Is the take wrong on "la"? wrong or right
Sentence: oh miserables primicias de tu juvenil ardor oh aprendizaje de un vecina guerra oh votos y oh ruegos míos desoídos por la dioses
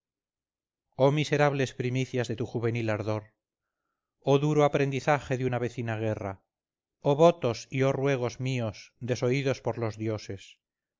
wrong